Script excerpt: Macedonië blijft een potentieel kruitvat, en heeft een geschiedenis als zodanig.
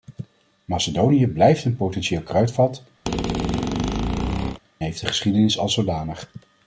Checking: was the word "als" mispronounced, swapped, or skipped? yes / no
no